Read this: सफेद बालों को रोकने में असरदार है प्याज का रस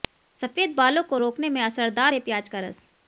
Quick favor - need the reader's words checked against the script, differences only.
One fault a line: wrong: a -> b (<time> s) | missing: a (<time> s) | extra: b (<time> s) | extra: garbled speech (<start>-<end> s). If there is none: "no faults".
no faults